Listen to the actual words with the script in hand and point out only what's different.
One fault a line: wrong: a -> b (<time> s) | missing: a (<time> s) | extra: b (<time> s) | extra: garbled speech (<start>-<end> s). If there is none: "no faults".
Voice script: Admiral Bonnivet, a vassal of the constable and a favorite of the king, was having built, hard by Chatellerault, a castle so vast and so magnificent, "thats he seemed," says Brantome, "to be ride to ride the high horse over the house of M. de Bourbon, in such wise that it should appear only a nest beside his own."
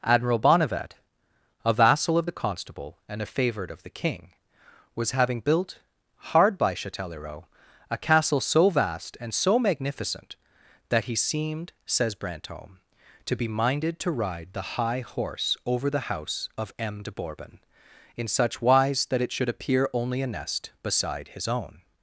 wrong: thats -> that (10.9 s)
wrong: ride -> minded (13.5 s)